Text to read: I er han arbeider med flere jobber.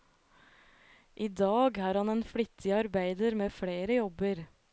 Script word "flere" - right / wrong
right